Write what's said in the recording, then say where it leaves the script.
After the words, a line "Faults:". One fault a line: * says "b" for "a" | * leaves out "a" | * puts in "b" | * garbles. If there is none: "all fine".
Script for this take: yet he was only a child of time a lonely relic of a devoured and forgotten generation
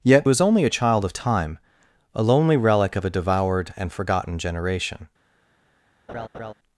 yet was only a child of time a lonely relic of a devoured and forgotten generation
Faults:
* leaves out "he"